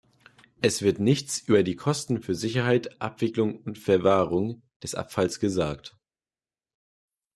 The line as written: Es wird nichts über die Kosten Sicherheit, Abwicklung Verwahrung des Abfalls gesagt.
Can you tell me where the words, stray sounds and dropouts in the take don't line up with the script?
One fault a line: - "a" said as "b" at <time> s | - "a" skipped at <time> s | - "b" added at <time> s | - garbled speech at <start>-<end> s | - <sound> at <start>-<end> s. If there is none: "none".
- "für" added at 2.2 s
- "und" added at 3.6 s